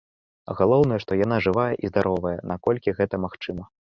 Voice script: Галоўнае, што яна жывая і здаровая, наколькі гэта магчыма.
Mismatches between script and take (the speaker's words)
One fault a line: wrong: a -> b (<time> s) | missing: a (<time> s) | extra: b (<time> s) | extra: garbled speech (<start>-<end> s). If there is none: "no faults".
no faults